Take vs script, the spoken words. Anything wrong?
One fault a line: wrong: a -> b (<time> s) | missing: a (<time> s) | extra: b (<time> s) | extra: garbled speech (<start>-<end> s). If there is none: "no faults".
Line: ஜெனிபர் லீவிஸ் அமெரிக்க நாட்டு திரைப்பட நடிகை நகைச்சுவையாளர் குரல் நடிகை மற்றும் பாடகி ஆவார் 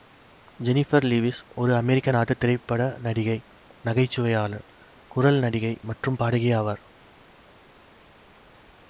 extra: ஒரு (1.6 s)